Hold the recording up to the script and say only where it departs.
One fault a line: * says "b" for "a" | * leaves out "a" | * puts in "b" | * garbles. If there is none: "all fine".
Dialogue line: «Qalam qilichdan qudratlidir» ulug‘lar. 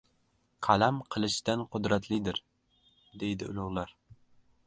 * puts in "deydi"